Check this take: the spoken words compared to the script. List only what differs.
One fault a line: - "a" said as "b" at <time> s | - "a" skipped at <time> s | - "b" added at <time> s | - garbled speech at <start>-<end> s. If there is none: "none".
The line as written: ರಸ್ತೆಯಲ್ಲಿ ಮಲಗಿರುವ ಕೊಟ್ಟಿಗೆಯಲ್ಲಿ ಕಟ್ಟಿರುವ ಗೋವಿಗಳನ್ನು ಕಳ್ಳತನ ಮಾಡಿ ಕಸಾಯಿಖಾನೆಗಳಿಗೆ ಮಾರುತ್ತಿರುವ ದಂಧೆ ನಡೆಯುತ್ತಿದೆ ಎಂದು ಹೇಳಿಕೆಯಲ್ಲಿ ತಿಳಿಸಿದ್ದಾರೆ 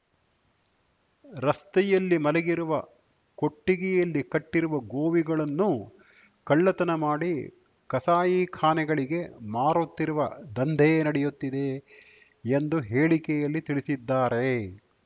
none